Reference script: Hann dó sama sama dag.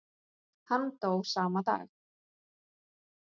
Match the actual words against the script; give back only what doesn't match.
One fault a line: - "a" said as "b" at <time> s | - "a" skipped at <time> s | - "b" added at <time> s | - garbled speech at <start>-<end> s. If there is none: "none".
- "sama" skipped at 1.6 s